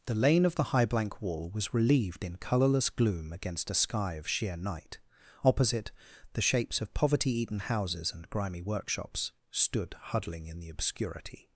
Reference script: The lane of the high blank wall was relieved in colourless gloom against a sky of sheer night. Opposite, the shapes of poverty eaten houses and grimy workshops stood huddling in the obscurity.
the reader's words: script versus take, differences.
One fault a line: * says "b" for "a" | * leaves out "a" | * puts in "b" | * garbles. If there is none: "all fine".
all fine